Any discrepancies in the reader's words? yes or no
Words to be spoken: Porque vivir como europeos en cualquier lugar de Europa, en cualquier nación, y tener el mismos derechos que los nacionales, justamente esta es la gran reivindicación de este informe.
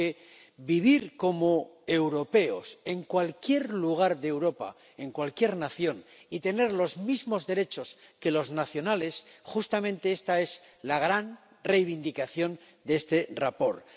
yes